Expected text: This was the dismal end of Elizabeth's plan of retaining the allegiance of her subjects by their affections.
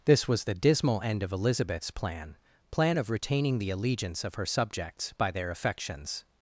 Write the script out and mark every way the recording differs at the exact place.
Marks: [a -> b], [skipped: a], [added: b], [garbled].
This was the dismal end of Elizabeth's plan [added: plan] of retaining the allegiance of her subjects by their affections.